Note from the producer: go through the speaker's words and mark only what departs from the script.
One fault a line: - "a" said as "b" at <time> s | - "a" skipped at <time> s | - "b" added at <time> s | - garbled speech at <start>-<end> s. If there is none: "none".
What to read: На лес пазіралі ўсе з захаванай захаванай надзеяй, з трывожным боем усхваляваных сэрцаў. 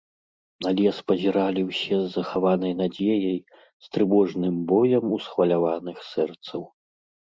- "захаванай" skipped at 2.7 s